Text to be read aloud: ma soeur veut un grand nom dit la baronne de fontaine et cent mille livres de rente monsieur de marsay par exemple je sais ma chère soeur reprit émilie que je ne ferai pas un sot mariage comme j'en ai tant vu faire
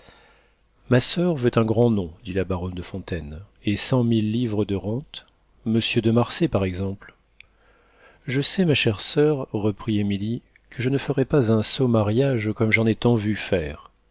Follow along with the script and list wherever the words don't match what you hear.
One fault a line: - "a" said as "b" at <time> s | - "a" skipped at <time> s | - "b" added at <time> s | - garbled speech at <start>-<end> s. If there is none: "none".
none